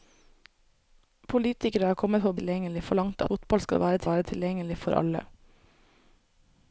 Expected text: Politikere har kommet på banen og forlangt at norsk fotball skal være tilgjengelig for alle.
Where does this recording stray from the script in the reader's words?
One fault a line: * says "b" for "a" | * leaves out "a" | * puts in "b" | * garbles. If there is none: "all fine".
* says "tilgjengelig" for "banen"
* leaves out "at norsk"
* puts in "være"